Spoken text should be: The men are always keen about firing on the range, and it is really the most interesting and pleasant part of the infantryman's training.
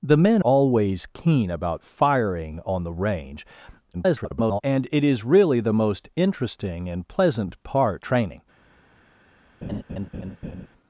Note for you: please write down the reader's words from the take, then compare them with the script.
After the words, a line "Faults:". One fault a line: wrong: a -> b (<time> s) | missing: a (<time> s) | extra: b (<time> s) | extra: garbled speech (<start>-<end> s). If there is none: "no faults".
The men always keen about firing on the range, [garbled] and it is really the most interesting and pleasant part training.
Faults:
missing: are (0.4 s)
extra: garbled speech (3.9-4.6 s)
missing: of the infantryman's (8.0 s)